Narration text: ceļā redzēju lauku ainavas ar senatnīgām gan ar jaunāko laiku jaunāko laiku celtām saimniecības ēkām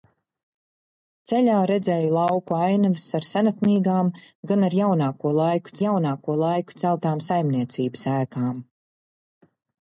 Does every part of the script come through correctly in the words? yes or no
yes